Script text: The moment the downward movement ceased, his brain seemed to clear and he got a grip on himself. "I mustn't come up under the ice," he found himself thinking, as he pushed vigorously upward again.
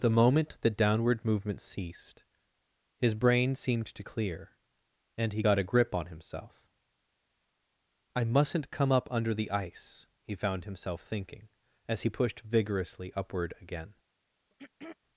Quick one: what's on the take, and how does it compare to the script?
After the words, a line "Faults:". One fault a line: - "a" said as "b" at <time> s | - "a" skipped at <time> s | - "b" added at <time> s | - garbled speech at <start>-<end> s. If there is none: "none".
The moment the downward movement ceased, his brain seemed to clear and he got a grip on himself. "I mustn't come up under the ice," he found himself thinking, as he pushed vigorously upward again.
Faults:
none